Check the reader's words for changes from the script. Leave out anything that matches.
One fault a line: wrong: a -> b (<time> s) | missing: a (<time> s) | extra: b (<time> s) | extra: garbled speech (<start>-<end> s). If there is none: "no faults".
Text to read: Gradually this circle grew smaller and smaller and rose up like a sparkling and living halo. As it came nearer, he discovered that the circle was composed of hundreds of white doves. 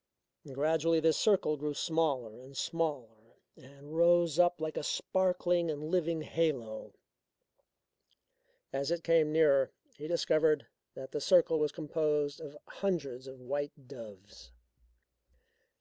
no faults